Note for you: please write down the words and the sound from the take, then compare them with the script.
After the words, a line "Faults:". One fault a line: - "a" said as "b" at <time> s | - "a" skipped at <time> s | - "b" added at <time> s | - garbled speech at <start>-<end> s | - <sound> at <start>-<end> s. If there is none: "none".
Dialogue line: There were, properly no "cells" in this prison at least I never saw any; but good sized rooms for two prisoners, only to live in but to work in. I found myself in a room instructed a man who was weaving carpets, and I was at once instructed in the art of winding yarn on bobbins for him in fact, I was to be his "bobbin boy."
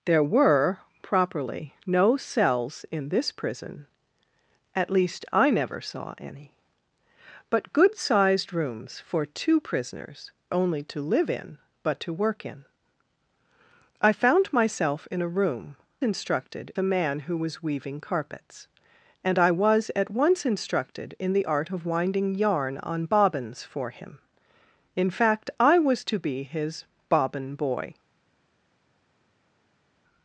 There were, properly no "cells" in this prison at least I never saw any; but good sized rooms for two prisoners, only to live in but to work in. I found myself in a room instructed a man who was weaving carpets, and I was at once instructed in the art of winding yarn on bobbins for him in fact, I was to be his "bobbin boy."
Faults:
none